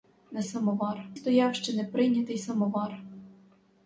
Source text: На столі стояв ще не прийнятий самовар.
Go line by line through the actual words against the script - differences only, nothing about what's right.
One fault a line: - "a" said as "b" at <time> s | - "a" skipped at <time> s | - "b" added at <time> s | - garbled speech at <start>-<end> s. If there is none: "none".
- "столі" said as "самовар" at 0.4 s